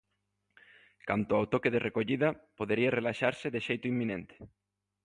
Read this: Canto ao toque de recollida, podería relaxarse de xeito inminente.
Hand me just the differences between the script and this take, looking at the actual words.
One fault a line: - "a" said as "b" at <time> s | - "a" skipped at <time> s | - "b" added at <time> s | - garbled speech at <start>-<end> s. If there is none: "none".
none